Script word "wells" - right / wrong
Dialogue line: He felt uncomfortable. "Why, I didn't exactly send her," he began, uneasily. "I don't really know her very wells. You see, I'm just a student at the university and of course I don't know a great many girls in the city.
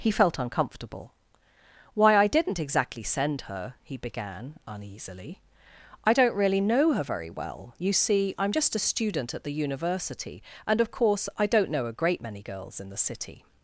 wrong